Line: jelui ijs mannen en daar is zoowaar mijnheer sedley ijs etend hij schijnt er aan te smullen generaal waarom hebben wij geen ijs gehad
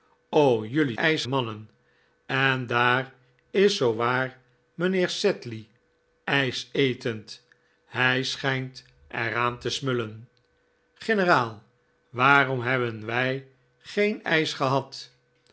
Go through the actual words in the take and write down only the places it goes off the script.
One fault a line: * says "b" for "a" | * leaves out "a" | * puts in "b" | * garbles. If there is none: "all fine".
all fine